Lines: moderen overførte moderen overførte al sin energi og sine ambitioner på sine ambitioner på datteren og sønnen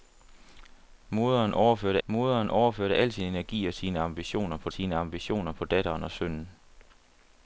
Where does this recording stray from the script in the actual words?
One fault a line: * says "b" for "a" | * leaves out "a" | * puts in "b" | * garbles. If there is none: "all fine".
all fine